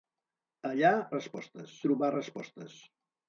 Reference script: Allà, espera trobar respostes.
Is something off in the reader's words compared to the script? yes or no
yes